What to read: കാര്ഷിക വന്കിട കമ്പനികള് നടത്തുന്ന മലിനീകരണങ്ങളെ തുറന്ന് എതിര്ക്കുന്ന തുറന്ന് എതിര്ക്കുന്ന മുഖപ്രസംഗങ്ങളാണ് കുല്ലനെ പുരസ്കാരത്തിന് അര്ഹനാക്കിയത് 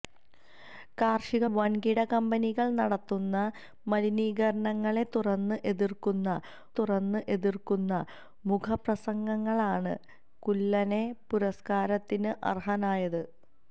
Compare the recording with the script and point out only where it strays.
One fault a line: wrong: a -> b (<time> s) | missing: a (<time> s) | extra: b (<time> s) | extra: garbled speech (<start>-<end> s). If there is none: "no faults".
no faults